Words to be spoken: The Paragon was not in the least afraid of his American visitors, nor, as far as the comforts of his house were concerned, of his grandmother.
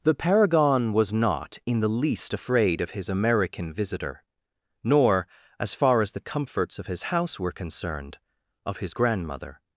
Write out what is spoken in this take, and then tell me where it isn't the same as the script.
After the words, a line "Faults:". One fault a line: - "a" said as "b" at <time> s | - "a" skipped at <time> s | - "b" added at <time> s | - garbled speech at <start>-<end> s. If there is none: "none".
The Paragon was not in the least afraid of his American visitor, nor, as far as the comforts of his house were concerned, of his grandmother.
Faults:
- "visitors" said as "visitor" at 3.7 s